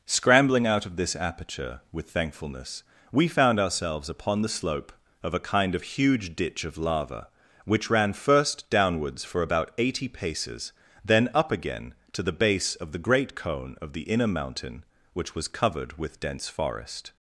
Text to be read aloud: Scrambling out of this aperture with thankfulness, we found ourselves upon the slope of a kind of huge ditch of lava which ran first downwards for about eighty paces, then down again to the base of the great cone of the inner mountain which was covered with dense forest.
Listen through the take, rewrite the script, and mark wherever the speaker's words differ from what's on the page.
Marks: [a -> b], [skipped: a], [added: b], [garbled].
Scrambling out of this aperture with thankfulness, we found ourselves upon the slope of a kind of huge ditch of lava which ran first downwards for about eighty paces, then [down -> up] again to the base of the great cone of the inner mountain which was covered with dense forest.